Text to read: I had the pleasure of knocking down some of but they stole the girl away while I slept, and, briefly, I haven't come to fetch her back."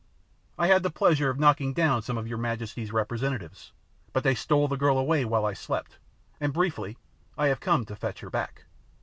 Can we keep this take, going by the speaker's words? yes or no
no